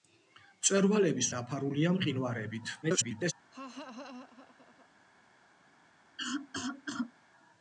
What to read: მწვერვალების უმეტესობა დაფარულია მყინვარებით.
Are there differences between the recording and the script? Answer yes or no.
yes